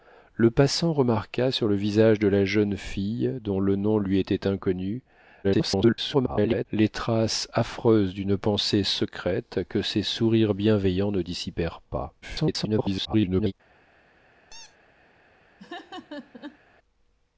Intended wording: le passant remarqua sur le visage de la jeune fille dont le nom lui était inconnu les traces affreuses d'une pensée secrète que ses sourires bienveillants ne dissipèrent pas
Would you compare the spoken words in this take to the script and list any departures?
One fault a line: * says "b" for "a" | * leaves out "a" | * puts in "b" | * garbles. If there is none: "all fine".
* garbles
* garbles